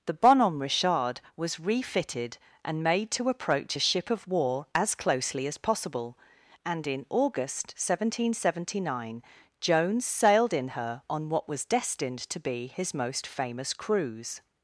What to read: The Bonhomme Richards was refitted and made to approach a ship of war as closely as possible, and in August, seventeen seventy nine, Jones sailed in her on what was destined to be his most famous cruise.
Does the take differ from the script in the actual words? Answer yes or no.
yes